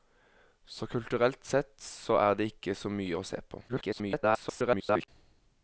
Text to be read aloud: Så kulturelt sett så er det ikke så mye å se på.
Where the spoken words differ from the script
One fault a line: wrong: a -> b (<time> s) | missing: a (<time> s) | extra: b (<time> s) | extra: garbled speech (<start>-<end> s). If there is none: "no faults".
extra: garbled speech (3.7-5.1 s)